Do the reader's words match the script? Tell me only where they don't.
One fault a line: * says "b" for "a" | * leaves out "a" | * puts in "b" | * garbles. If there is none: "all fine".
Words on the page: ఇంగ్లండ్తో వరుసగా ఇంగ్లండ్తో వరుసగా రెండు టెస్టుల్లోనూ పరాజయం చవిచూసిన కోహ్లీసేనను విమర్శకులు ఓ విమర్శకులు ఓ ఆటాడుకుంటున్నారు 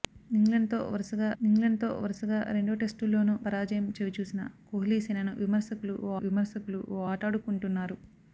all fine